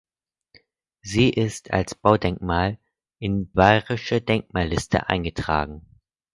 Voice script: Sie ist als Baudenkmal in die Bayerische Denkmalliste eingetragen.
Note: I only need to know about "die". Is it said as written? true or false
false